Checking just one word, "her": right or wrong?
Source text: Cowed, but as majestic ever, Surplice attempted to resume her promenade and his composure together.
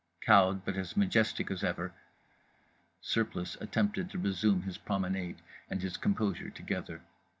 wrong